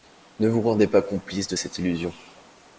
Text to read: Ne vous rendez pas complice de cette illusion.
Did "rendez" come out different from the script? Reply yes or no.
no